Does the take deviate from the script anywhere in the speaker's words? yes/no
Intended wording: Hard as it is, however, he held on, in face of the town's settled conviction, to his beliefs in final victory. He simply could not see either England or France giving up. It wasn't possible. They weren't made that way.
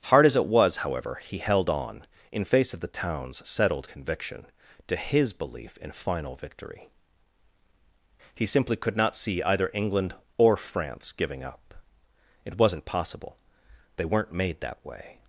yes